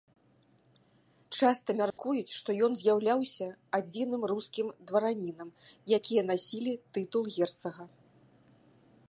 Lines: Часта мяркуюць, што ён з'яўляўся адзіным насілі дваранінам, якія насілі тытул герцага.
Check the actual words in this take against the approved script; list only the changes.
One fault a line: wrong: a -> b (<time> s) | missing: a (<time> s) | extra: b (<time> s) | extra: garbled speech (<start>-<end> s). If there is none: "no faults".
wrong: насілі -> рускім (4.3 s)